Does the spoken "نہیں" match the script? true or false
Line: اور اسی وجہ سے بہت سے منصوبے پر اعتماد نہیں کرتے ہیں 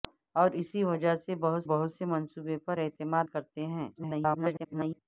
false